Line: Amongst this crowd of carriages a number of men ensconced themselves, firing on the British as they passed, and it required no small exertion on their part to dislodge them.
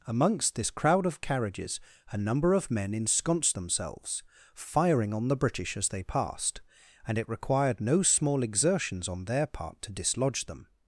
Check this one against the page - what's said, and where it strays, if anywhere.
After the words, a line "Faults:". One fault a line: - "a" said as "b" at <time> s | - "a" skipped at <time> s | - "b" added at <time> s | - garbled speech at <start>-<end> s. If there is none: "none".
Amongst this crowd of carriages a number of men ensconced themselves, firing on the British as they passed, and it required no small exertions on their part to dislodge them.
Faults:
- "exertion" said as "exertions" at 8.4 s